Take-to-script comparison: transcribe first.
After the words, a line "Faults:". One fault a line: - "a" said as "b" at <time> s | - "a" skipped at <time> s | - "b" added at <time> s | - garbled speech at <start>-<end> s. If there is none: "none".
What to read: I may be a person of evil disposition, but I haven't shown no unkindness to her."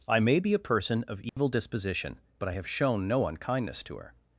I may be a person of evil disposition, but I have shown no unkindness to her."
Faults:
- "haven't" said as "have" at 2.5 s